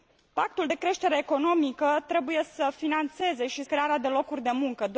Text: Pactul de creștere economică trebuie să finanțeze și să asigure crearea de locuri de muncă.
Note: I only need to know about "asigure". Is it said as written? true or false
false